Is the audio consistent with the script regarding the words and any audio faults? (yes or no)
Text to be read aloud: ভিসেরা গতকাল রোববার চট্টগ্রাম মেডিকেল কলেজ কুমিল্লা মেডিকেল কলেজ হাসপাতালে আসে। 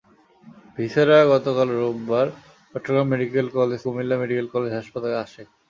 yes